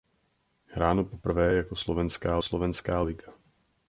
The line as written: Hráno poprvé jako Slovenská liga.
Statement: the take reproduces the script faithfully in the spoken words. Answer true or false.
false